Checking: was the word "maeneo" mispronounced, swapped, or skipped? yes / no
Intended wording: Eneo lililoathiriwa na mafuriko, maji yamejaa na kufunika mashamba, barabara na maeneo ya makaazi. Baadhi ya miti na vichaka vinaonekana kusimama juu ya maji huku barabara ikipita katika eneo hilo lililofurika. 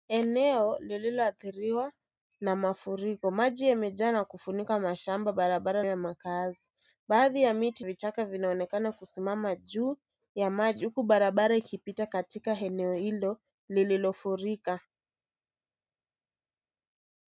yes